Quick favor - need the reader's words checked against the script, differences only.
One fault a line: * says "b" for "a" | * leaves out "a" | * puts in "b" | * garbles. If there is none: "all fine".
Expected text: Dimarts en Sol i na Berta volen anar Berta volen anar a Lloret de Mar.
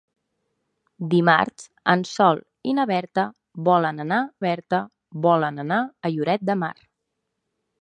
all fine